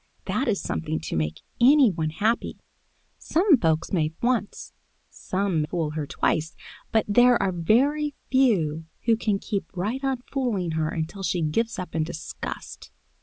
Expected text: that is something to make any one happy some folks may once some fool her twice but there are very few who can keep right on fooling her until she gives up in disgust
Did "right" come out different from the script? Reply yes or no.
no